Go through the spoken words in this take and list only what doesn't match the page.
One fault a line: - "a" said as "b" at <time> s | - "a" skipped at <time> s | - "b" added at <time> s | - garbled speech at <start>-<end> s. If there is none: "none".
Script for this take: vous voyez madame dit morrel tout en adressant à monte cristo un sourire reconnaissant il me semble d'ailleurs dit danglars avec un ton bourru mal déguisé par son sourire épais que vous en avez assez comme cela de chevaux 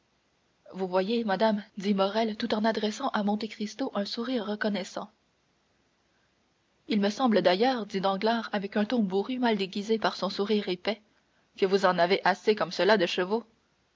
none